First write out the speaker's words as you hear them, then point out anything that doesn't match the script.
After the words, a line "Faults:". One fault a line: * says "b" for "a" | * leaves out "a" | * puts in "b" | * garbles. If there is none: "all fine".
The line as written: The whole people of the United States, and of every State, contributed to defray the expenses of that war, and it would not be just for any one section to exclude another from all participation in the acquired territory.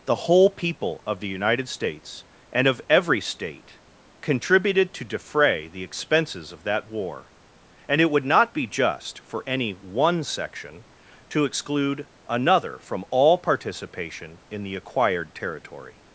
The whole people of the United States, and of every State, contributed to defray the expenses of that war, and it would not be just for any one section to exclude another from all participation in the acquired territory.
Faults:
all fine